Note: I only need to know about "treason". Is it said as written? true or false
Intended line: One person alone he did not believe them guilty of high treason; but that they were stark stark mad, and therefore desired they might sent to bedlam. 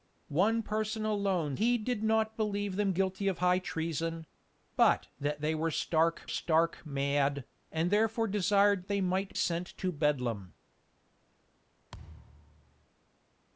true